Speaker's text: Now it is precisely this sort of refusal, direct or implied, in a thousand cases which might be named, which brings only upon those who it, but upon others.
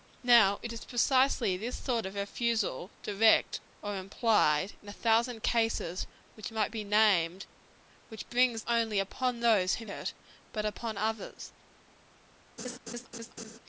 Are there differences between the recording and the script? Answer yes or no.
no